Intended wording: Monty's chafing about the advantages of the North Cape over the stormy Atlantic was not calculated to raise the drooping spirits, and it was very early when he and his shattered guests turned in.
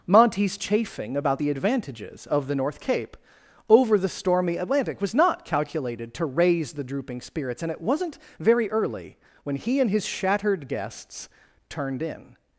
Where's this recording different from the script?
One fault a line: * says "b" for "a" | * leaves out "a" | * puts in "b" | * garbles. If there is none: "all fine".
* says "wasn't" for "was"